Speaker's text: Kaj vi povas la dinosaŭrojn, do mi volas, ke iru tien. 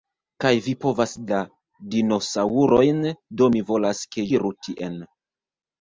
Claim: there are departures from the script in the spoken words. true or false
false